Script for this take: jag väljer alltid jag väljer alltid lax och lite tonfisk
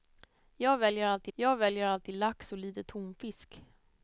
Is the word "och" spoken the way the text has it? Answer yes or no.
yes